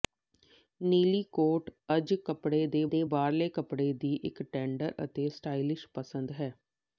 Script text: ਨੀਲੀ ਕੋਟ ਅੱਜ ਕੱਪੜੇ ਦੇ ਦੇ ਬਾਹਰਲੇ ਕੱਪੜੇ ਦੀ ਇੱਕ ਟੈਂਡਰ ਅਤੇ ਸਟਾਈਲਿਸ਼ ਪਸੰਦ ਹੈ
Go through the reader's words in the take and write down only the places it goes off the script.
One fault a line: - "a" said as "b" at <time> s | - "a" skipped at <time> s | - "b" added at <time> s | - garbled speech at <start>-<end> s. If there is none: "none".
none